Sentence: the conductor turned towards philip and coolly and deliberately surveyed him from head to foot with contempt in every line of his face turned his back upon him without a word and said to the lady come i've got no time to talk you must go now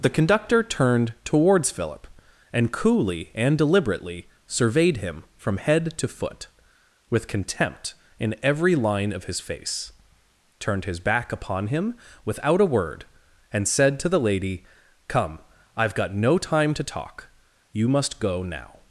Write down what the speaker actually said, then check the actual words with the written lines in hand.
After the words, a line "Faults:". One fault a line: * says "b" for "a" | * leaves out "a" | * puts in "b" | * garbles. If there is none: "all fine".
the conductor turned towards philip and coolly and deliberately surveyed him from head to foot with contempt in every line of his face turned his back upon him without a word and said to the lady come i've got no time to talk you must go now
Faults:
all fine